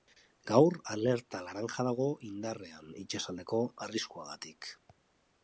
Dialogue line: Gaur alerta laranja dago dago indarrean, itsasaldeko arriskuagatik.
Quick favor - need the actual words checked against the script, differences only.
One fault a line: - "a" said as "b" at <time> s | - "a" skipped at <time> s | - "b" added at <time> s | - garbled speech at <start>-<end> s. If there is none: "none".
- "dago" skipped at 2.1 s